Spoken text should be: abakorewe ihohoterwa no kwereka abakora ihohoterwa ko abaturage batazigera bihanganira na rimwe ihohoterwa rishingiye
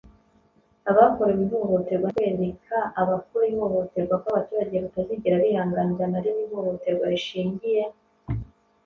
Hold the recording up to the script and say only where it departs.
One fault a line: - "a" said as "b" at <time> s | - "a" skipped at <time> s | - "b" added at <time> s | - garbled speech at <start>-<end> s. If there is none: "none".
none